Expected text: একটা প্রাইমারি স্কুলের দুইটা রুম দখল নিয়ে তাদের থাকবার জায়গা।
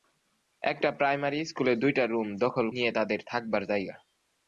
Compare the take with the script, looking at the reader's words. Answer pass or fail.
pass